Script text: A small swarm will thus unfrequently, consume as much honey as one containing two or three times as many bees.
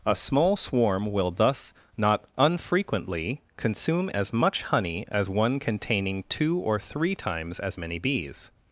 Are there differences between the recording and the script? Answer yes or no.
yes